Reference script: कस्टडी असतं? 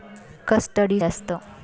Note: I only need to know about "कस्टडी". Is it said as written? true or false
true